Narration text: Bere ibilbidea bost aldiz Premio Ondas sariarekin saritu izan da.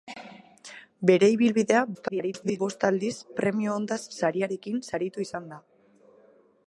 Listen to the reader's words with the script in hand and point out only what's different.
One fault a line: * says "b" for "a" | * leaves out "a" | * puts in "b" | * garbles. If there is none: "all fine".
* garbles